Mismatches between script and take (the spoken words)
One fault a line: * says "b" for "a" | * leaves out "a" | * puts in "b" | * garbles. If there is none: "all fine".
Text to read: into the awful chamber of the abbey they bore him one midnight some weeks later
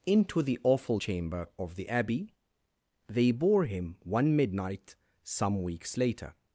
all fine